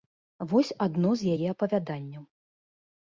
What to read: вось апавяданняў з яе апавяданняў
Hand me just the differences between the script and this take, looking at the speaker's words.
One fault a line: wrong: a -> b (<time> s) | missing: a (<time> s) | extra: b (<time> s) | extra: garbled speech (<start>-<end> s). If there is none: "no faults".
wrong: апавяданняў -> адно (0.9 s)